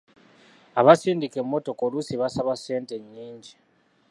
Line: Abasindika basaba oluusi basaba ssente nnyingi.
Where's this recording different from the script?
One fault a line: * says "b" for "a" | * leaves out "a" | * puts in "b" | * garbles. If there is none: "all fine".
* says "emmotoka" for "basaba"